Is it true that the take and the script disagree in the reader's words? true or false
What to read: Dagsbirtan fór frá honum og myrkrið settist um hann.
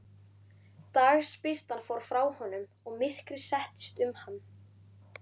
false